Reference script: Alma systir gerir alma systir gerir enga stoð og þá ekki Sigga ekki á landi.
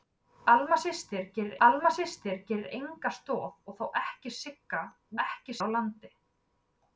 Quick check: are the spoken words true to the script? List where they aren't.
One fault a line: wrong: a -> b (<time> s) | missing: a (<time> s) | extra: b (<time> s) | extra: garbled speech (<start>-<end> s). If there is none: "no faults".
no faults